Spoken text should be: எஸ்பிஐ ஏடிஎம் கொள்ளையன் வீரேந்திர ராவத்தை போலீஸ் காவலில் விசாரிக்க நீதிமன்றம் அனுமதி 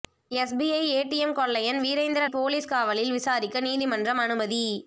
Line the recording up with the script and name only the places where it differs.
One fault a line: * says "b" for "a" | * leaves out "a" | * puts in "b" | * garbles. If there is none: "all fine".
* leaves out "ராவத்தை"